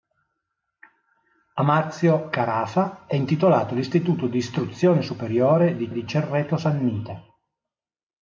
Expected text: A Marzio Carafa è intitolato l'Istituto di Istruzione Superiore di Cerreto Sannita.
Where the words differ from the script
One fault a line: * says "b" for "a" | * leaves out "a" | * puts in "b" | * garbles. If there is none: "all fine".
* puts in "di"